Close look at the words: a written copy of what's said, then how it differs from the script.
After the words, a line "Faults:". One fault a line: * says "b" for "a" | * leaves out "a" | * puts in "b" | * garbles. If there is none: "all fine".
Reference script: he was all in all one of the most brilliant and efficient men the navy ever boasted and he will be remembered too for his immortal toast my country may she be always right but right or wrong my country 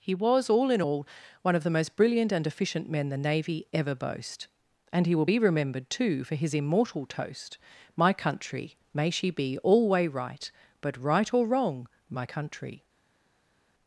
he was all in all one of the most brilliant and efficient men the navy ever boast and he will be remembered too for his immortal toast my country may she be alway right but right or wrong my country
Faults:
* says "boast" for "boasted"
* says "alway" for "always"